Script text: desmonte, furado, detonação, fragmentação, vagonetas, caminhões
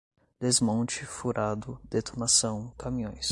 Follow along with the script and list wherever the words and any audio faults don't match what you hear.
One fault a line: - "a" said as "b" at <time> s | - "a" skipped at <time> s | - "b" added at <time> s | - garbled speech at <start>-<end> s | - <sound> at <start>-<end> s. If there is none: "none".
- "fragmentação vagonetas" skipped at 2.7 s